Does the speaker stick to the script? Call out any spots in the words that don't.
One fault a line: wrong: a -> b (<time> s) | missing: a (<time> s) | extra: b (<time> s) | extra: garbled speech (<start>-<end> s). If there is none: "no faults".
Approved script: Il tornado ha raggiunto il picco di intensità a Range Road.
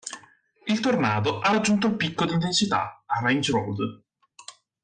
no faults